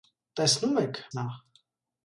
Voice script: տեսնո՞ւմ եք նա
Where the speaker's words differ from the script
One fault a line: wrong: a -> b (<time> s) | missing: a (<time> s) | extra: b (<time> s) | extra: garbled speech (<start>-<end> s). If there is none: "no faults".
no faults